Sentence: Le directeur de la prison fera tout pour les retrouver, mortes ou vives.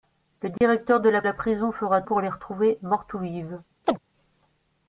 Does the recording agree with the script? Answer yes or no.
no